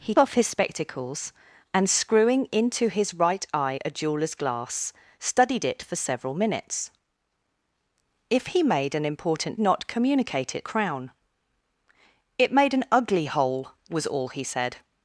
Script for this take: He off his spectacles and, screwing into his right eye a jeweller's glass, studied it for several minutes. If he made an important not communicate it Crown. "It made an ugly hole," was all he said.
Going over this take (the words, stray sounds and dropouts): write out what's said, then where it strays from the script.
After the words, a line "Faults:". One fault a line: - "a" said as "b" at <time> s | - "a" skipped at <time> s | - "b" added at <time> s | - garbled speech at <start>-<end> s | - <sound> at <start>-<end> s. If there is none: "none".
He off his spectacles and, screwing into his right eye a jeweller's glass, studied it for several minutes. If he made an important not communicate it Crown. "It made an ugly hole," was all he said.
Faults:
none